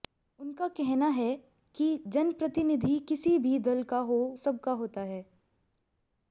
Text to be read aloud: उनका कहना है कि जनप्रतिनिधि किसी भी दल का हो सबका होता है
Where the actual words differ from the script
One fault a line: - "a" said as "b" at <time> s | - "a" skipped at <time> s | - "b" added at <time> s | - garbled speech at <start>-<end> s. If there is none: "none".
none